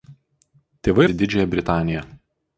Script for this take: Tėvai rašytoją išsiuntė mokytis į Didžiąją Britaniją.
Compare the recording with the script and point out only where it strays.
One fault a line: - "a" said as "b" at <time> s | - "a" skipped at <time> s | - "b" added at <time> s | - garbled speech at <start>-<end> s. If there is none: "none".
- "rašytoją išsiuntė mokytis" skipped at 1.1 s